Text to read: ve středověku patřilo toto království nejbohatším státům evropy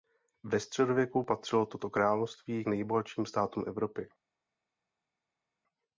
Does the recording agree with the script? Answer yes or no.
yes